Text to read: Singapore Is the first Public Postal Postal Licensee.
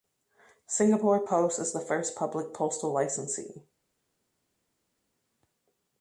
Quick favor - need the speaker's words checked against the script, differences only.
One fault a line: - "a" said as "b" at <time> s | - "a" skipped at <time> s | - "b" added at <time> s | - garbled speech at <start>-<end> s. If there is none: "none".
- "Post" added at 1.3 s
- "Postal" skipped at 2.9 s